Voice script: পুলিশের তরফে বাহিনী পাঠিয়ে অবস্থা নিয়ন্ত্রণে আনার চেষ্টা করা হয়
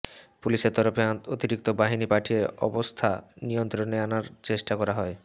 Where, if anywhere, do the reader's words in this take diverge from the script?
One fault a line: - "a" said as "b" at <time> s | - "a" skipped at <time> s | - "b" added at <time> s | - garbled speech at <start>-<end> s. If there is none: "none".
- "অতিরিক্ত" added at 1.3 s